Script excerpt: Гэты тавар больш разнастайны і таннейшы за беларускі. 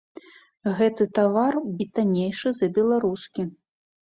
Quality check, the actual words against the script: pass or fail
fail